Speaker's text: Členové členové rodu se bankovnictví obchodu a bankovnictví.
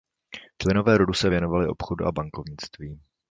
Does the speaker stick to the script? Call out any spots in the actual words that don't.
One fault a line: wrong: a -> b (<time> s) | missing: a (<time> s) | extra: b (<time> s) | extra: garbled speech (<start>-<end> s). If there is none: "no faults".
missing: členové (1.0 s)
wrong: bankovnictví -> věnovali (1.3 s)